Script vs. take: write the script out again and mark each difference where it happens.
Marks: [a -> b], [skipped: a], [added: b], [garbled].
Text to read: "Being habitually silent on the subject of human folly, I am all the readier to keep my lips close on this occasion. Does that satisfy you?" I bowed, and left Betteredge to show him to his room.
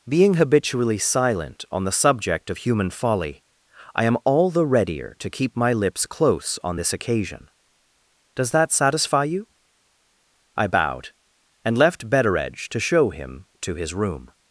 "Being habitually silent on the subject of human folly, I am all the readier to keep my lips close on this occasion. Does that satisfy you?" I bowed, and left Betteredge to show him to his room.